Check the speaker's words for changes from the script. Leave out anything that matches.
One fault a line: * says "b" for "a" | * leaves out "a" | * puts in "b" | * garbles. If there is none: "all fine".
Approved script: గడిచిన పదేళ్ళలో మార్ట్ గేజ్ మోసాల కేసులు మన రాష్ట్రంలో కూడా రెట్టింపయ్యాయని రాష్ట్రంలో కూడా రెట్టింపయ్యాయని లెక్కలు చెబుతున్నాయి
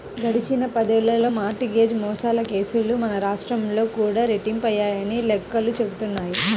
* leaves out "రాష్ట్రంలో కూడా రెట్టింపయ్యాయని"